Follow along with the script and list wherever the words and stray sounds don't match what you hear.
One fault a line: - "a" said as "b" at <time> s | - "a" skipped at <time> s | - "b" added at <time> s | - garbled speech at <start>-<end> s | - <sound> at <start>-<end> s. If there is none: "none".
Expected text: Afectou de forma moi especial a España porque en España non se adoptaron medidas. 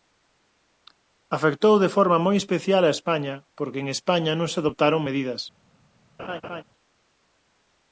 - laugh at 6.2-6.6 s